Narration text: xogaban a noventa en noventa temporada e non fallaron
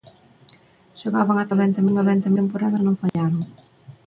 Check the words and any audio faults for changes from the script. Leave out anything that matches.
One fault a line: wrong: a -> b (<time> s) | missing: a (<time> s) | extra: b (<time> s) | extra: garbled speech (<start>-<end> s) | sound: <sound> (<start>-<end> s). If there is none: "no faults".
sound: dropout (3.1-3.1 s)